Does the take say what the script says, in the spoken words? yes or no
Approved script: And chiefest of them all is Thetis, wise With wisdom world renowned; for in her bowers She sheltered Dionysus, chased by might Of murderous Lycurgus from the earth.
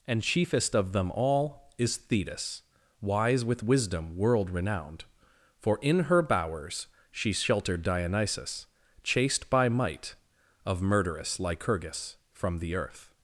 yes